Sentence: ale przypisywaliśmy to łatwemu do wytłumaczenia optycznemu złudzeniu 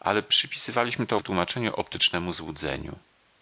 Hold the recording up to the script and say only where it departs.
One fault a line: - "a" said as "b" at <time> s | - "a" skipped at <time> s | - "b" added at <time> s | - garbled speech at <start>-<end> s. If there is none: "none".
- "łatwemu do" skipped at 1.2 s